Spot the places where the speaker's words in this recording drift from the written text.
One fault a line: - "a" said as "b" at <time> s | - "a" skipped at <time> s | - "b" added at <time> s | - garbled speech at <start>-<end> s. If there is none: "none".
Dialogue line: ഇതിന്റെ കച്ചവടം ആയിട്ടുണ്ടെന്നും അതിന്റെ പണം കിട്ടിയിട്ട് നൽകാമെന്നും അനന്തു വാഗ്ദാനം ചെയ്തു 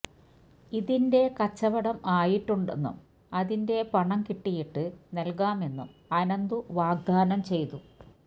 none